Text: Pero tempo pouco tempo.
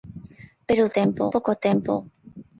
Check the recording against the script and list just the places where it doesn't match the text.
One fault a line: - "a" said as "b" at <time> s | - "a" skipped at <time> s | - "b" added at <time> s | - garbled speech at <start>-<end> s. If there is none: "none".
none